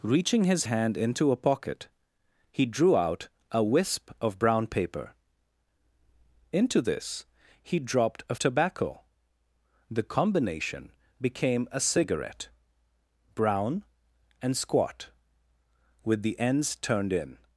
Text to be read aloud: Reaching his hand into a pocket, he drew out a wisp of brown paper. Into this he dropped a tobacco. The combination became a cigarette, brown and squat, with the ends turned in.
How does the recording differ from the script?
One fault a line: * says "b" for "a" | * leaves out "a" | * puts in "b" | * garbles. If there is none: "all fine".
all fine